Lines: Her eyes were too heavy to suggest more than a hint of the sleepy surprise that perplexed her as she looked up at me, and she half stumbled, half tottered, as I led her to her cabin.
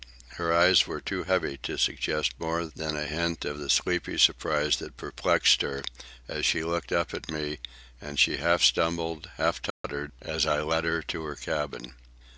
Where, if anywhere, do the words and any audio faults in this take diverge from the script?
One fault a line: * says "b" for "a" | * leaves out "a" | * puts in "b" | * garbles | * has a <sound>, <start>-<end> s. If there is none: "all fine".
* has a dropout, 9.7-9.8 s